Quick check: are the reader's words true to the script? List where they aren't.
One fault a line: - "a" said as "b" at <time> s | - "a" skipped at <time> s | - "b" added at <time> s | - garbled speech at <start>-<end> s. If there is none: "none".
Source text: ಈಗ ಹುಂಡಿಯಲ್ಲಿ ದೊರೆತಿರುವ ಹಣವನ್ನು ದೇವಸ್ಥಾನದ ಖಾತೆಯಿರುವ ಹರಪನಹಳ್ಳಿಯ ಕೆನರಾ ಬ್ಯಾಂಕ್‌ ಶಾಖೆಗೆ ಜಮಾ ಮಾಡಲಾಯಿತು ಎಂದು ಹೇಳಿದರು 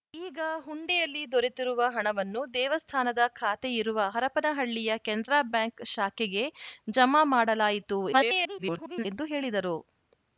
- garbled speech at 8.1-9.1 s